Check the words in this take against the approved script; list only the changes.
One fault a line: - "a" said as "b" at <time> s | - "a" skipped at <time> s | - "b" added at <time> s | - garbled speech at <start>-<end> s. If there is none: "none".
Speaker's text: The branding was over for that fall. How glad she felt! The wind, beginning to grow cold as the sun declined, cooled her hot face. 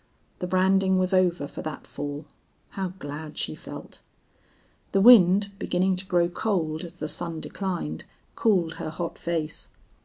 none